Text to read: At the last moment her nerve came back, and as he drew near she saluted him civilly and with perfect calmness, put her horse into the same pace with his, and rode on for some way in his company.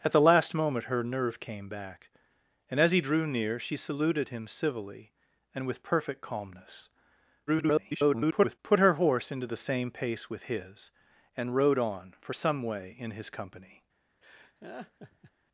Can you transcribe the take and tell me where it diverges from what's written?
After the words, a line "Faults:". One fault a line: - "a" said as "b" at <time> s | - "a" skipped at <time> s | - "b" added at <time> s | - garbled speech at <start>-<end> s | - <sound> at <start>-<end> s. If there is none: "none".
At the last moment her nerve came back, and as he drew near she saluted him civilly and with perfect calmness, [garbled] put her horse into the same pace with his, and rode on for some way in his company.
Faults:
- garbled speech at 7.5-8.6 s
- laugh at 14.2-15.3 s